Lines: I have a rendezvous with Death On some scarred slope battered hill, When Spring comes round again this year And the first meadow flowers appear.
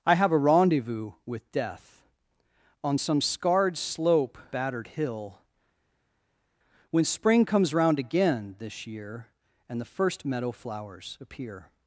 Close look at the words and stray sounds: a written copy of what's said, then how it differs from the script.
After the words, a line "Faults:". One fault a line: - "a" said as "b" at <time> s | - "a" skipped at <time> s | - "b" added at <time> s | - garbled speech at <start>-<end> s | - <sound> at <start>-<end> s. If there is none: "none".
I have a rendezvous with Death On some scarred slope battered hill, When Spring comes round again this year And the first meadow flowers appear.
Faults:
none